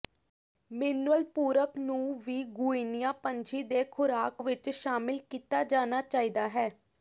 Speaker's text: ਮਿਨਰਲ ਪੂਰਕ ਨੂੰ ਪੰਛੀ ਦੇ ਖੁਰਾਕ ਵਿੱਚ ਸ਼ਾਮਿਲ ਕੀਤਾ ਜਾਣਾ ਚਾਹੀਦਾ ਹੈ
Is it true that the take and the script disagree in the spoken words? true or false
true